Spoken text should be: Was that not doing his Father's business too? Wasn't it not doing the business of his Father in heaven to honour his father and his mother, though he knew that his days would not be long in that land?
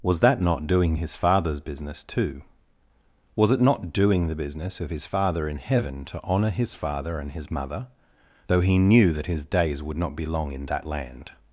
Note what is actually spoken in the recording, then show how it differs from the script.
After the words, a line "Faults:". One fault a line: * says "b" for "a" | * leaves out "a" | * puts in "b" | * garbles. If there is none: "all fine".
Was that not doing his Father's business too? Was it not doing the business of his Father in heaven to honour his father and his mother, though he knew that his days would not be long in that land?
Faults:
* says "Was" for "Wasn't"